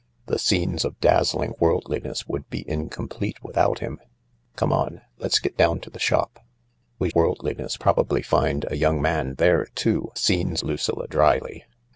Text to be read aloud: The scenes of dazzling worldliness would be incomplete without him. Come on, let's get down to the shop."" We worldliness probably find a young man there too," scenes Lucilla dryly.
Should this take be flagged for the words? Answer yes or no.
no